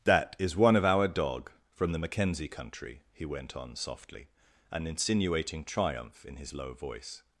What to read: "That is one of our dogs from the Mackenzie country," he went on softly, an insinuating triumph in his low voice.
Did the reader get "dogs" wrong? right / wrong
wrong